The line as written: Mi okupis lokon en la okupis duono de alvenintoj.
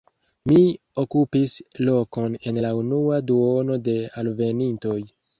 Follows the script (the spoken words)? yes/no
no